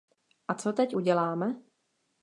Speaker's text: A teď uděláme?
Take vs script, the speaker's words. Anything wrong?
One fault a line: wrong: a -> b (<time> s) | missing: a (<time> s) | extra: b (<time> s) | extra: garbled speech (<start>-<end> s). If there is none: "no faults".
extra: co (0.5 s)